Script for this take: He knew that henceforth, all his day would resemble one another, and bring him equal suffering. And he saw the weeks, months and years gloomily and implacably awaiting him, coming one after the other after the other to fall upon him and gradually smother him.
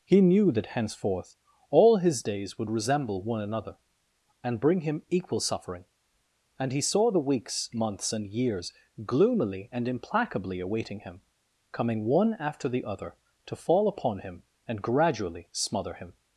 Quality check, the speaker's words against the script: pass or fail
fail